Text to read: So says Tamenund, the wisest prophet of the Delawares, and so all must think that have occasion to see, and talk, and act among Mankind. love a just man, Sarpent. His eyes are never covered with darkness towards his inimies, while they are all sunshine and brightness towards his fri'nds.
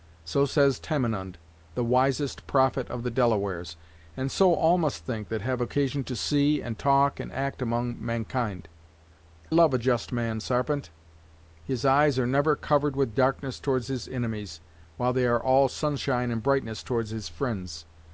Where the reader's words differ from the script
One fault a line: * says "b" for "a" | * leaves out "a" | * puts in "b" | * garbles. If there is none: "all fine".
all fine